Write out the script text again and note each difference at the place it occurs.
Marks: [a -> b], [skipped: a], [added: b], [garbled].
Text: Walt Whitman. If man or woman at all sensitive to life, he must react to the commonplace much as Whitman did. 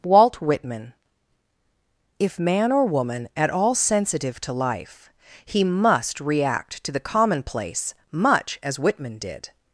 Walt Whitman. If man or woman at all sensitive to life, he must react to the commonplace much as Whitman did.